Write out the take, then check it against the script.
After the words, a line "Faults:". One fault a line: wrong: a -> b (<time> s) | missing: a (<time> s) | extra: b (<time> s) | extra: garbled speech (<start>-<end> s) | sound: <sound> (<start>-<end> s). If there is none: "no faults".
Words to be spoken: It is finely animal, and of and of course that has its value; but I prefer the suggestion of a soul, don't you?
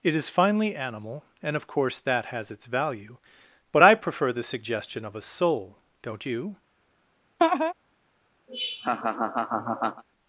It is finely animal, and of course that has its value; but I prefer the suggestion of a soul, don't you?
Faults:
missing: and of (1.7 s)
sound: laugh (7.4-7.7 s)
sound: laugh (8.5-10.0 s)